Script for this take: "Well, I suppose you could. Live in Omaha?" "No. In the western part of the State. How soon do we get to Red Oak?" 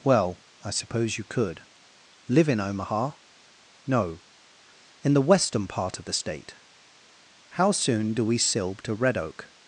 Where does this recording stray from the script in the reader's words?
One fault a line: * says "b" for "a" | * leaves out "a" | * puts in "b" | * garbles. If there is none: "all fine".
* says "silb" for "get"